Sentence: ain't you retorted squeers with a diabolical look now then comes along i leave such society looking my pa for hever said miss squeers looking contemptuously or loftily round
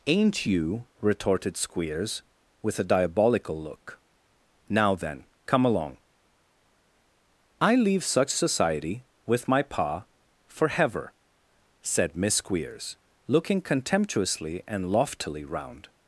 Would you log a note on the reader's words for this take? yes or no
yes